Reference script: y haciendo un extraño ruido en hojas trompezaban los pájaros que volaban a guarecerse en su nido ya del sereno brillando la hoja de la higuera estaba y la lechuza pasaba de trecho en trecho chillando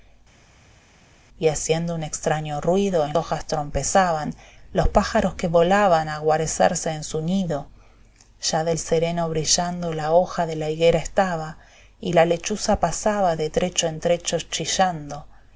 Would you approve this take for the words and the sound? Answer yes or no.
yes